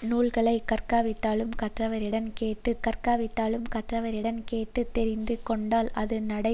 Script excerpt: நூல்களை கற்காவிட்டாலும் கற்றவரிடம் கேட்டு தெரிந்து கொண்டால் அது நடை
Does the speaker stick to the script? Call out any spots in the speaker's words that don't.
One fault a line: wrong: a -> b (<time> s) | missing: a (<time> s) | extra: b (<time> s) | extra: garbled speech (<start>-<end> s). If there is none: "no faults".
extra: கற்காவிட்டாலும் கற்றவரிடம் கேட்டு (2.8 s)